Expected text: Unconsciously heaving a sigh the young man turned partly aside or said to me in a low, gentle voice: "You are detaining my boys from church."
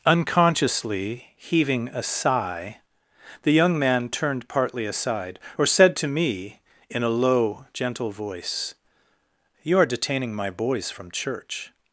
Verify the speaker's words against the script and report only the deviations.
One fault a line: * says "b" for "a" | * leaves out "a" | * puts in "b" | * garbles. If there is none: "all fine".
all fine